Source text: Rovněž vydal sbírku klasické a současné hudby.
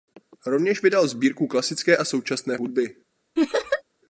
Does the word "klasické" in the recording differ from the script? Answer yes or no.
no